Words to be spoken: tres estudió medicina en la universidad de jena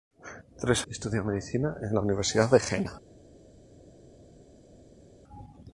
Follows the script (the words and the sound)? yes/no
yes